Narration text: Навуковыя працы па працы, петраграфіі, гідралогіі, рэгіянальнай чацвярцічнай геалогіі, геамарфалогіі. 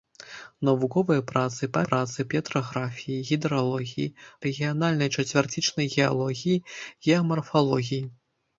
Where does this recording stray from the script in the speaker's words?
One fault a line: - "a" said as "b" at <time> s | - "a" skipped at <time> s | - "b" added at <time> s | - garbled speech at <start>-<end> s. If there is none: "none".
none